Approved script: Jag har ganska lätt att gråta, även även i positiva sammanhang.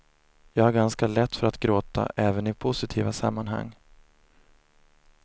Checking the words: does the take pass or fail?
fail